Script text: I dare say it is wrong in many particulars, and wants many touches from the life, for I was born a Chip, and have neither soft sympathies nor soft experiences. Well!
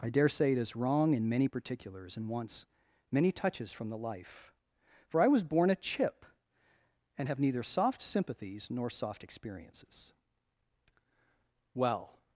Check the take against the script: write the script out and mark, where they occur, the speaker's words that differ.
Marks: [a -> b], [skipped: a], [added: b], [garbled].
I dare say it is wrong in many particulars, and wants many touches from the life, for I was born a Chip, and have neither soft sympathies nor soft experiences. Well!